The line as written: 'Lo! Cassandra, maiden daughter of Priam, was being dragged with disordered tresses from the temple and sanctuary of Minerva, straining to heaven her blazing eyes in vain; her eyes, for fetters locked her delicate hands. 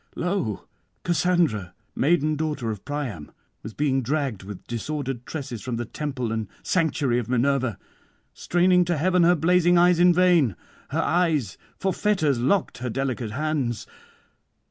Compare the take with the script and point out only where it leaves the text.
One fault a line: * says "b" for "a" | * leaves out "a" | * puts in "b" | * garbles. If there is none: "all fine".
all fine